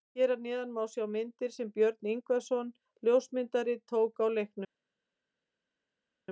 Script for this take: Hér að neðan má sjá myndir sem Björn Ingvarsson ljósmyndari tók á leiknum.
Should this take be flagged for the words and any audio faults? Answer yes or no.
no